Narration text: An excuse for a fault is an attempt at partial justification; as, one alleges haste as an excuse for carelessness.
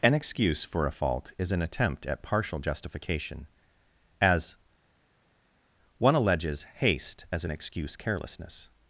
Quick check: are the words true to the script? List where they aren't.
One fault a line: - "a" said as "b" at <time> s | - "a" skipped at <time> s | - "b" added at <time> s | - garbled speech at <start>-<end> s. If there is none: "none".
- "for" skipped at 8.0 s